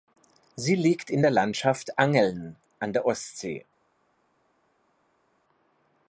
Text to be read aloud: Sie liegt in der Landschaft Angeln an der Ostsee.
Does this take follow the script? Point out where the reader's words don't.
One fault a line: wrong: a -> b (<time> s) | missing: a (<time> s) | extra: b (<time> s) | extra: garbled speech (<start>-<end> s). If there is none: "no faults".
no faults